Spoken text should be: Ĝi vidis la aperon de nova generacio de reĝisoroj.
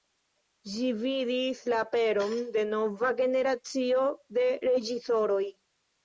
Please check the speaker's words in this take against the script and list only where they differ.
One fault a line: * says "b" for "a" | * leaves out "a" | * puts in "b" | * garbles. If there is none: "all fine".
all fine